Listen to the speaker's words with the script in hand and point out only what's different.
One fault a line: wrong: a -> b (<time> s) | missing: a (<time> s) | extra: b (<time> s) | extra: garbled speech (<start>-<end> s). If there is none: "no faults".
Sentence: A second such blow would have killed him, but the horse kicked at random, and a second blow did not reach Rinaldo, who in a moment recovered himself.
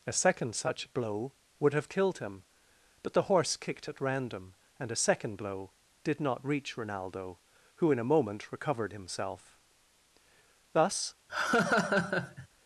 extra: Thus (10.7 s)